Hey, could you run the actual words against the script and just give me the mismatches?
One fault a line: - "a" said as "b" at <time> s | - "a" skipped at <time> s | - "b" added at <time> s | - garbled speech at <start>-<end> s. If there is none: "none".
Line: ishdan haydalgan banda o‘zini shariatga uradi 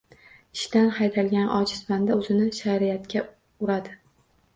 - "ojiz" added at 1.6 s